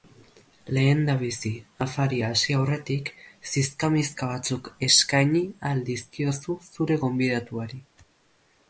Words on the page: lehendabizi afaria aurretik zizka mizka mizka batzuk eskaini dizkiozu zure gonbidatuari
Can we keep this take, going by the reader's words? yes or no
no